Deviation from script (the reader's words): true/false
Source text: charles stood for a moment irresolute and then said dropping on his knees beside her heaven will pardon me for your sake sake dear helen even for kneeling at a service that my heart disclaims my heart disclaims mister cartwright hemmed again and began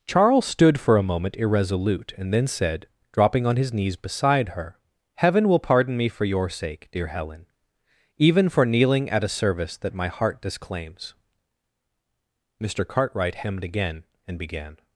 true